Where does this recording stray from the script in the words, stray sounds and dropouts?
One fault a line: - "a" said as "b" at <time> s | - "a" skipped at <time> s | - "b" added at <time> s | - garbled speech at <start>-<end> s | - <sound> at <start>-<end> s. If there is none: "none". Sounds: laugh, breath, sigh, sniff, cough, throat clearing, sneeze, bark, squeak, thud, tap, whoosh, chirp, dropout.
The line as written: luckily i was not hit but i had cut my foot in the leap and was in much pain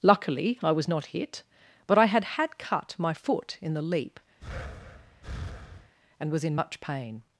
- "had" added at 2.2 s
- breath at 4.4-5.9 s